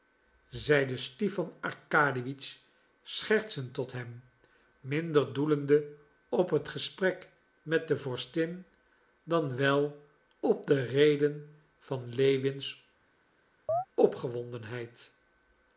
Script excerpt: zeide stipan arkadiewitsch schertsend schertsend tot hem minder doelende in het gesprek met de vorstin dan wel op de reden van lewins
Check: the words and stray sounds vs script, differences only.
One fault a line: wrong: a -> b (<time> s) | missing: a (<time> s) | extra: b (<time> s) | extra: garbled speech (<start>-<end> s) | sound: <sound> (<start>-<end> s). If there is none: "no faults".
missing: schertsend (3.7 s)
wrong: in -> op (6.3 s)
sound: chirp (13.7-13.9 s)